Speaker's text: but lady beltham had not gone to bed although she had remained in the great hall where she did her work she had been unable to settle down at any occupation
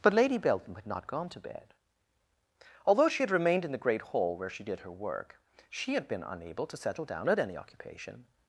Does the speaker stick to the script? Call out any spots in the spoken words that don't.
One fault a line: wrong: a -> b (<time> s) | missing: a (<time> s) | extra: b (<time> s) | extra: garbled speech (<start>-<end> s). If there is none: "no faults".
no faults